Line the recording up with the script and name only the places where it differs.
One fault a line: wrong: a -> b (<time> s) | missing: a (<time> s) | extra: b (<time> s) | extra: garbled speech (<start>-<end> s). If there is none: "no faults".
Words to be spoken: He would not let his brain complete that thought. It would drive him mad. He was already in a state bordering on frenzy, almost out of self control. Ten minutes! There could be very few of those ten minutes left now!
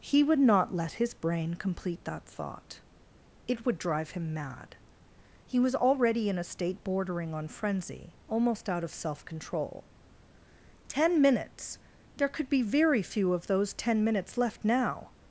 no faults